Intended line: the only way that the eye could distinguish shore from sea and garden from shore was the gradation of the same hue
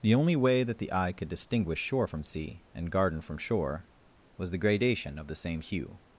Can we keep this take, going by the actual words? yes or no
yes